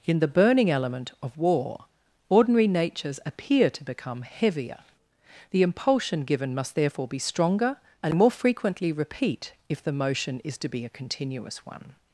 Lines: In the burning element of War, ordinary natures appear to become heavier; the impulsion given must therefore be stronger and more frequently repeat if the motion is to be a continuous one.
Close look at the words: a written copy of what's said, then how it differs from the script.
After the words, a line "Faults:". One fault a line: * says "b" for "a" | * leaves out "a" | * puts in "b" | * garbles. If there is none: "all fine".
In the burning element of War, ordinary natures appear to become heavier; the impulsion given must therefore be stronger and more frequently repeat if the motion is to be a continuous one.
Faults:
all fine